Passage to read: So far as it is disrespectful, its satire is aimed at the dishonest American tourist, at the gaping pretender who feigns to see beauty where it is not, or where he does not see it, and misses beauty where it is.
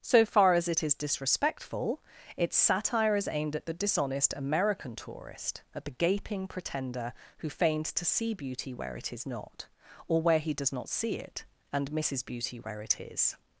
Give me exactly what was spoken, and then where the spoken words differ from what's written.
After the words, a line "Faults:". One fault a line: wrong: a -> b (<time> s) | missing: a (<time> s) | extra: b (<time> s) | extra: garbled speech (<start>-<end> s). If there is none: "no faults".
So far as it is disrespectful, its satire is aimed at the dishonest American tourist, at the gaping pretender who feigns to see beauty where it is not, or where he does not see it, and misses beauty where it is.
Faults:
no faults